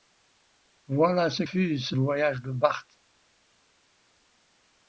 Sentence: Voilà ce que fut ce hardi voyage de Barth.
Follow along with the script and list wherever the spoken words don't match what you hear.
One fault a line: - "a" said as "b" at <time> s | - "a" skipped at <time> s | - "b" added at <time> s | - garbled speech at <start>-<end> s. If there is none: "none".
- "que" skipped at 1.4 s
- "hardi" skipped at 2.0 s